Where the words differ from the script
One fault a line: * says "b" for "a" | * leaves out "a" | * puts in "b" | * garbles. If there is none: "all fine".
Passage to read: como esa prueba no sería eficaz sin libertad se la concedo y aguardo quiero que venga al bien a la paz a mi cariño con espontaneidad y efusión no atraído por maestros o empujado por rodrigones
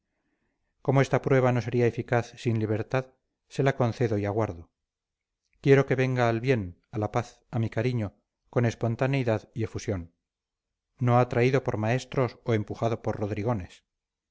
* says "esta" for "esa"